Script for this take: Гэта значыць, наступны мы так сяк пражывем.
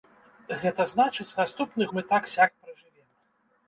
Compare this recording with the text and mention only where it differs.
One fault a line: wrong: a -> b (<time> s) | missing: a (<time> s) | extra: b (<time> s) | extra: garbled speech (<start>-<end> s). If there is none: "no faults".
no faults